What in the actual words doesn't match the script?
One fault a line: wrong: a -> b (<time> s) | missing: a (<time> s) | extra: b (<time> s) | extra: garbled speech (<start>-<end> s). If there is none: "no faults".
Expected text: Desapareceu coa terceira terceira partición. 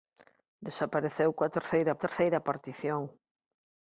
no faults